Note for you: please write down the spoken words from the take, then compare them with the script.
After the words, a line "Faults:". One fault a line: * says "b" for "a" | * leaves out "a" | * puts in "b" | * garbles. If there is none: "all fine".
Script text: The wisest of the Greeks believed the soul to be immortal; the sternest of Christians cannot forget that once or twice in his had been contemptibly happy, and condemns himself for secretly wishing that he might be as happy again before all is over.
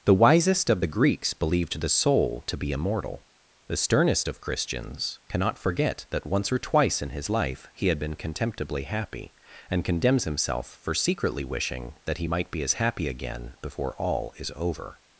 The wisest of the Greeks believed the soul to be immortal; the sternest of Christians cannot forget that once or twice in his life he had been contemptibly happy, and condemns himself for secretly wishing that he might be as happy again before all is over.
Faults:
* puts in "life he"